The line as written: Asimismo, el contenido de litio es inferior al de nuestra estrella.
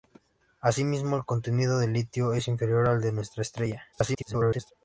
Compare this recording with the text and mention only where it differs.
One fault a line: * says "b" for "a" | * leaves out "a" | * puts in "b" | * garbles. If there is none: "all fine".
* garbles